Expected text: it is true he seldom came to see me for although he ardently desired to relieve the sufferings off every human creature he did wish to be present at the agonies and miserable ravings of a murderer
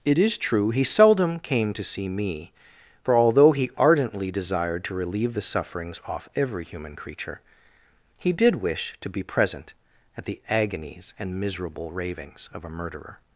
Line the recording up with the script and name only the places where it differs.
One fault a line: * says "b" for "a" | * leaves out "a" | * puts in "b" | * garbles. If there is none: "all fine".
all fine